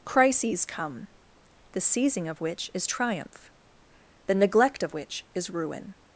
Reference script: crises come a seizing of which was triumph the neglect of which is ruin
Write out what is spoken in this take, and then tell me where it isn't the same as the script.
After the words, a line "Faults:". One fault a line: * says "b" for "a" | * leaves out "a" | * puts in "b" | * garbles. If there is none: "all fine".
crises come the seizing of which is triumph the neglect of which is ruin
Faults:
* says "the" for "a"
* says "is" for "was"